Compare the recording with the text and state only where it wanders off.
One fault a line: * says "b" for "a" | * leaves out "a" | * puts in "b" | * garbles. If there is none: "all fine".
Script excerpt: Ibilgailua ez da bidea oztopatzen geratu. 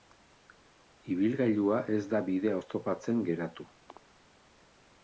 all fine